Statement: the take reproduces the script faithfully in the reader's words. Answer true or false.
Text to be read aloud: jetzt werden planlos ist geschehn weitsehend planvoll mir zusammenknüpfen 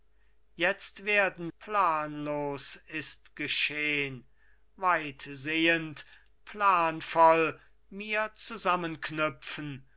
true